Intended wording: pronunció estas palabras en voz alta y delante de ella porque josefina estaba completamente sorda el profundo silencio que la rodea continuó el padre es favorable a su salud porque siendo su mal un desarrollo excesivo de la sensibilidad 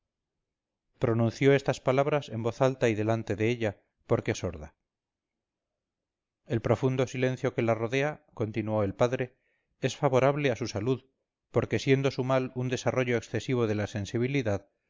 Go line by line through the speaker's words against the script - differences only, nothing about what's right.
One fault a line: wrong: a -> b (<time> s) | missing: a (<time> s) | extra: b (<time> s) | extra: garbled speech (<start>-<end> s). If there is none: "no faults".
missing: josefina estaba completamente (4.3 s)